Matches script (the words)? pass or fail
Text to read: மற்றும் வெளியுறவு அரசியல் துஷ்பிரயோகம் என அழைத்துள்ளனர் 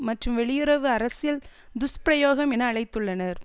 pass